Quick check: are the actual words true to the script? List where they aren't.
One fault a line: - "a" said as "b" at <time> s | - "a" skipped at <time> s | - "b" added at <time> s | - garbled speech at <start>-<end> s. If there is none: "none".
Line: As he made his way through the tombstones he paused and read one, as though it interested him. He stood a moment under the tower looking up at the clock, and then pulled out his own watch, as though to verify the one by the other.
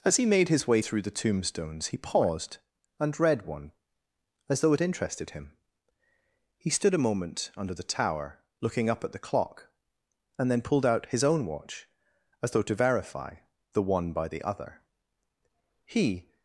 - "He" added at 15.8 s